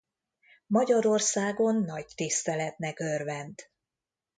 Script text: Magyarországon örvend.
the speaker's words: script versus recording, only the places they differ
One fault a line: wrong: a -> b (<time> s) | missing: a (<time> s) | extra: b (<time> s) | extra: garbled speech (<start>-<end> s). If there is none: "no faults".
extra: nagy tiszteletnek (1.8 s)